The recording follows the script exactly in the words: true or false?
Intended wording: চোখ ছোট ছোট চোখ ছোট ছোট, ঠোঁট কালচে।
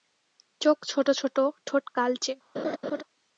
false